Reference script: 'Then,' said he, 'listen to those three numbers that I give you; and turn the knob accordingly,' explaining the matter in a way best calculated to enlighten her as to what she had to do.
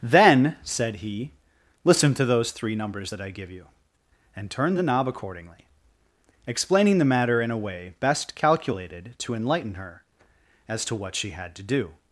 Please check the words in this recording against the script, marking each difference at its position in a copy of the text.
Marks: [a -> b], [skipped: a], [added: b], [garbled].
'Then,' said he, 'listen to those three numbers that I give you; and turn the knob accordingly,' explaining the matter in a way best calculated to enlighten her as to what she had to do.